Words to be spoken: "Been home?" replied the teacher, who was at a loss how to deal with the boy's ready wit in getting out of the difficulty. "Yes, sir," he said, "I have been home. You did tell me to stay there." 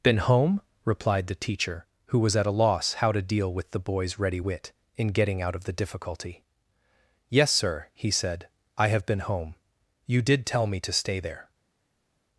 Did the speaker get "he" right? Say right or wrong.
right